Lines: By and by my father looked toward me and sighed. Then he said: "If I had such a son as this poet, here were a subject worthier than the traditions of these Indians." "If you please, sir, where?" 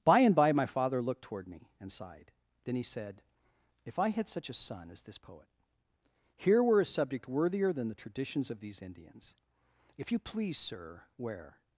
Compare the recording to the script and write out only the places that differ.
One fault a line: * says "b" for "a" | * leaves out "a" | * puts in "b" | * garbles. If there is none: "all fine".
all fine